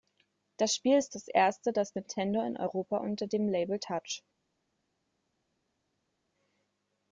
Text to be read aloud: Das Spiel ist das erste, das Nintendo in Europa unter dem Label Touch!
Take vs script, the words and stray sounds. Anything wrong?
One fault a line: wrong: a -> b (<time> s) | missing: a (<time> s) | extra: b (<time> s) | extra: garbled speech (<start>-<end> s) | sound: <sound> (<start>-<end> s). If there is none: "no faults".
no faults